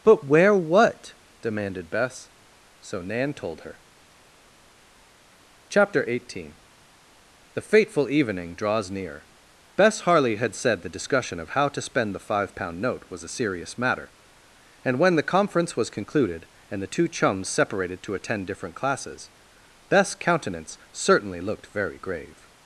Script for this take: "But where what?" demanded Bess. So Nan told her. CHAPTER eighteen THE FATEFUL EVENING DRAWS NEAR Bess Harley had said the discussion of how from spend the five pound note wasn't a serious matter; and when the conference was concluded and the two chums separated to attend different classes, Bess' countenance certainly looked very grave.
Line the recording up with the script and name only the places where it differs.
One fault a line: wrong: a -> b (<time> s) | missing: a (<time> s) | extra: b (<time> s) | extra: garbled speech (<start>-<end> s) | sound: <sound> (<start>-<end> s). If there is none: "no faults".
wrong: from -> to (11.7 s)
wrong: wasn't -> was (13.1 s)